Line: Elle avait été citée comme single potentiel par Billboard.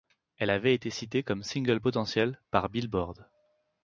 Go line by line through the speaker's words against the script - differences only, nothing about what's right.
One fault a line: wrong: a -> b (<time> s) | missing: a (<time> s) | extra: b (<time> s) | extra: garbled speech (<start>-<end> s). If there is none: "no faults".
no faults